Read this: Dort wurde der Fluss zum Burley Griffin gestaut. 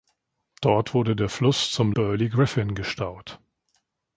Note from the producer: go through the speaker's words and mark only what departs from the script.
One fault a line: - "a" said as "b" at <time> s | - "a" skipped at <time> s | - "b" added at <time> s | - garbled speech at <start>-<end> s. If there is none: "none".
none